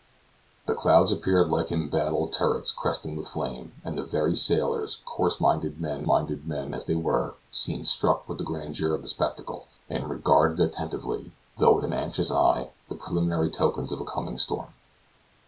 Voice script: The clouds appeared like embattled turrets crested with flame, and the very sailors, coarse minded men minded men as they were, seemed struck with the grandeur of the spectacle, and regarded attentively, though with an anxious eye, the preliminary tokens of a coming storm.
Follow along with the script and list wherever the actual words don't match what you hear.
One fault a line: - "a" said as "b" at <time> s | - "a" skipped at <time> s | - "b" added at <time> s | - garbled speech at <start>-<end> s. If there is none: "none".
none